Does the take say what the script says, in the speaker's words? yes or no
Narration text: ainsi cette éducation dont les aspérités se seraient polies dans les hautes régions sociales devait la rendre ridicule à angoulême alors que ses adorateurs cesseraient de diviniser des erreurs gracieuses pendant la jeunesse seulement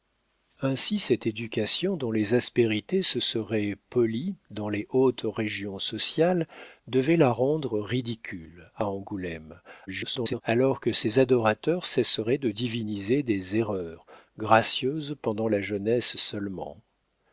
no